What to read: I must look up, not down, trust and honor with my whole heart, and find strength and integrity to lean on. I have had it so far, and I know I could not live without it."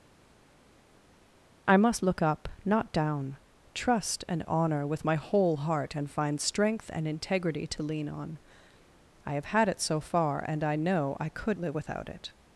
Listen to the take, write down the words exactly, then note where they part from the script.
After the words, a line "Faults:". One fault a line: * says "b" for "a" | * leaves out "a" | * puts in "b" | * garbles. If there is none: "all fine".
I must look up, not down, trust and honor with my whole heart, and find strength and integrity to lean on. I have had it so far, and I know I could live without it."
Faults:
* leaves out "not"